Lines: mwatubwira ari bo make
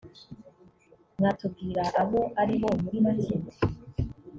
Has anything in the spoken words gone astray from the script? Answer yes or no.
yes